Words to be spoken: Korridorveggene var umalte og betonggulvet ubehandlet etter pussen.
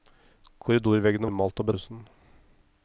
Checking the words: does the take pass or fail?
fail